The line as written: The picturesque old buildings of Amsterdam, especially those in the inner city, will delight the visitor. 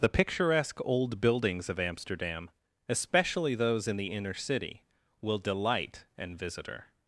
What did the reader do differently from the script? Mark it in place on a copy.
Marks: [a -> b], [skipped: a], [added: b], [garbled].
The picturesque old buildings of Amsterdam, especially those in the inner city, will delight [the -> an] visitor.